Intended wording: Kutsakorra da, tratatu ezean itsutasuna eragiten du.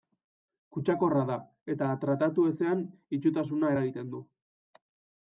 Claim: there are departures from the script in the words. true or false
true